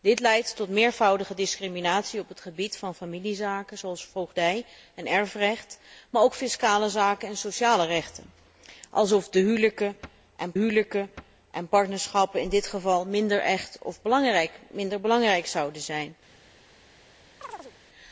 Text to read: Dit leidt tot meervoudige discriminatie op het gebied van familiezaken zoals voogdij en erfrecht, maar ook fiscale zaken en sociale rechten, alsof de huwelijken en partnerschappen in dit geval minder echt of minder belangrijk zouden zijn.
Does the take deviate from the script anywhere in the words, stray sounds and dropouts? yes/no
yes